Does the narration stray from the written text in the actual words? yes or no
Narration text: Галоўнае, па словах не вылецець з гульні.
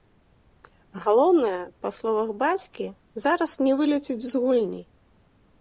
yes